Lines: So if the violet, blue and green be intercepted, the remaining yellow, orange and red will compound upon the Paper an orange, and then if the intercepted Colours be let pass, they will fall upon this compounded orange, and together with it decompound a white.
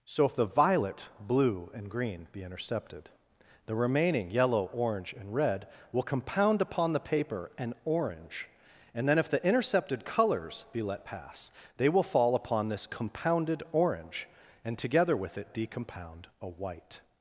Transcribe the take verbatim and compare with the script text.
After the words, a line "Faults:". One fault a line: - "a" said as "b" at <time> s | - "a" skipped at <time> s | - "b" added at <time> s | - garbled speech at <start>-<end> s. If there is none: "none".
So if the violet, blue and green be intercepted, the remaining yellow, orange and red will compound upon the Paper an orange, and then if the intercepted Colours be let pass, they will fall upon this compounded orange, and together with it decompound a white.
Faults:
none